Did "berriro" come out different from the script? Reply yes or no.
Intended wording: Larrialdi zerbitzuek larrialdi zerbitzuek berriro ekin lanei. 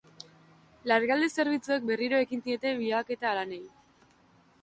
yes